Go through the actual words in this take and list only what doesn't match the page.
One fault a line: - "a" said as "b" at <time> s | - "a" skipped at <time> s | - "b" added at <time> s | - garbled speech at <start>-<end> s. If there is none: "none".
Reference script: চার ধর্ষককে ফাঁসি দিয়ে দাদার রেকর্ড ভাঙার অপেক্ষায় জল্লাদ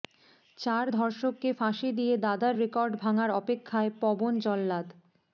- "পবন" added at 4.0 s